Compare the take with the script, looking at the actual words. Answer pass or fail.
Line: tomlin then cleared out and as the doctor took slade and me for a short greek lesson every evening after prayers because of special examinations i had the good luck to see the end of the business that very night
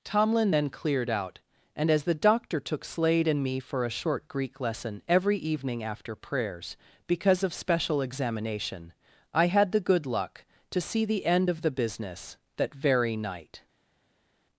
fail